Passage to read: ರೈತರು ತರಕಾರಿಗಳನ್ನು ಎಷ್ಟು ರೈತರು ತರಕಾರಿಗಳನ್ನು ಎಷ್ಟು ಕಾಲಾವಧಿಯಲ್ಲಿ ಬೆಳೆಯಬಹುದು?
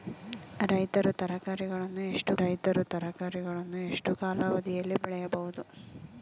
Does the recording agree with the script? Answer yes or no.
yes